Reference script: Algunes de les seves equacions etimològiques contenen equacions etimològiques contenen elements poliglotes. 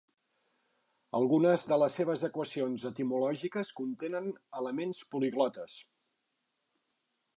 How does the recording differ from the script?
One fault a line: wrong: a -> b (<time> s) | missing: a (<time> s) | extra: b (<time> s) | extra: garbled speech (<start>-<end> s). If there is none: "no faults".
missing: equacions etimològiques contenen (4.3 s)